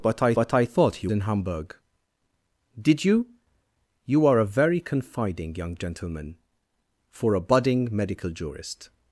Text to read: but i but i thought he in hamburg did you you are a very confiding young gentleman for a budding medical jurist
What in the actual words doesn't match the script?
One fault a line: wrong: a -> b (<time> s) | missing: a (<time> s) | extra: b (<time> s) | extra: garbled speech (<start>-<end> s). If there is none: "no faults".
no faults